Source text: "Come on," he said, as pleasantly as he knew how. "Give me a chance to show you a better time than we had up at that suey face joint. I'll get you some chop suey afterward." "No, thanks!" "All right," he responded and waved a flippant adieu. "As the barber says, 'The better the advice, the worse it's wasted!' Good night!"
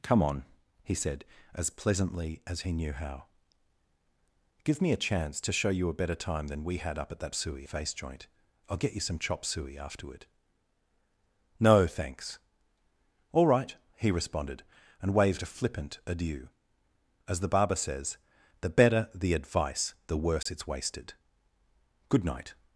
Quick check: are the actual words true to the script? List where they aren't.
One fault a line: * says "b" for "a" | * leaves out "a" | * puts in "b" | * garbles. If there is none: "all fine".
all fine